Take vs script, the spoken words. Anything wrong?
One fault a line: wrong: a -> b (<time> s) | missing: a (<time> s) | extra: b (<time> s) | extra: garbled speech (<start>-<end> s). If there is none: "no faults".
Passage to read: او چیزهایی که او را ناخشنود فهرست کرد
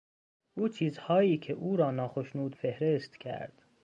no faults